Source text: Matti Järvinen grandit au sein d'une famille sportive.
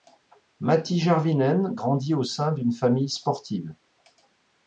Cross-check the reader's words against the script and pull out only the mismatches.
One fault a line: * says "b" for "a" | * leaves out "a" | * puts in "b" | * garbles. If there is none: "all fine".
all fine